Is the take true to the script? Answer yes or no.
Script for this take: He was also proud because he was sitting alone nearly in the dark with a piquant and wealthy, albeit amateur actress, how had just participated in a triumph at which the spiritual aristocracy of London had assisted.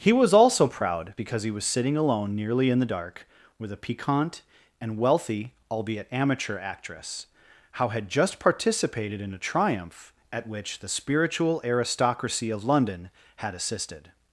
yes